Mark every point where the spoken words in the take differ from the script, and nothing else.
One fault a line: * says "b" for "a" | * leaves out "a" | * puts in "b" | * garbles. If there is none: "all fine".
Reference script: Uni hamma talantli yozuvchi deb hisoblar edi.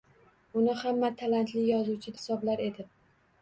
* leaves out "deb"